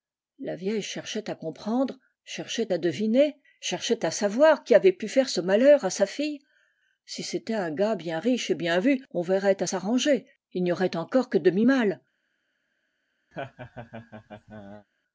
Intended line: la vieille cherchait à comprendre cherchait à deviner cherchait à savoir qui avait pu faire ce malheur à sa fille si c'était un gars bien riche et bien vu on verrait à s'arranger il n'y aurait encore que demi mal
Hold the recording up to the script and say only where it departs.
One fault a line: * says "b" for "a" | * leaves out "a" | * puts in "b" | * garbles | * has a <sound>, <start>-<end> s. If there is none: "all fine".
* has a laugh, 13.3-14.9 s